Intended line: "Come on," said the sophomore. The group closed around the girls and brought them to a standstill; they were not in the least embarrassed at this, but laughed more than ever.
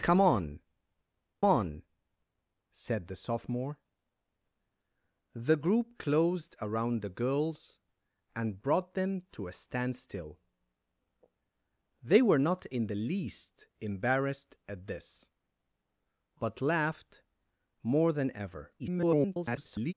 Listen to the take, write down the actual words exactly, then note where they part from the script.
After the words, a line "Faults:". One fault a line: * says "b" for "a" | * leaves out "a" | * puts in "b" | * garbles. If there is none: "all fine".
"Come on on," said the sophomore. The group closed around the girls and brought them to a standstill; they were not in the least embarrassed at this, but laughed more than ever. [garbled]
Faults:
* puts in "on"
* garbles